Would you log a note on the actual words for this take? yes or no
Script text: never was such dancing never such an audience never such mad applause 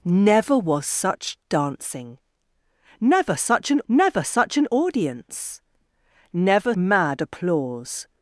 yes